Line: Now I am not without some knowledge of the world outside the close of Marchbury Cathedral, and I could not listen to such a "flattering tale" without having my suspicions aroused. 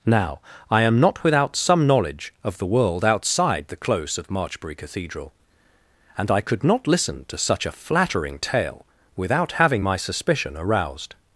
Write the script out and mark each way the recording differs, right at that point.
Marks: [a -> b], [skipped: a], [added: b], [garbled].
Now I am not without some knowledge of the world outside the close of Marchbury Cathedral, and I could not listen to such a "flattering tale" without having my [suspicions -> suspicion] aroused.